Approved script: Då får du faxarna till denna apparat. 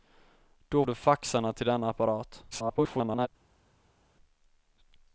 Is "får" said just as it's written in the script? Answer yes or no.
no